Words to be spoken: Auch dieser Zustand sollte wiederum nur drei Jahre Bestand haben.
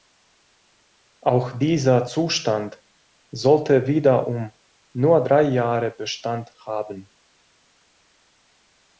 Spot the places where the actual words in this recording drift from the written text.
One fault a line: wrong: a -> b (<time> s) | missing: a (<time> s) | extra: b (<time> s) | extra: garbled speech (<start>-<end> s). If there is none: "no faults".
no faults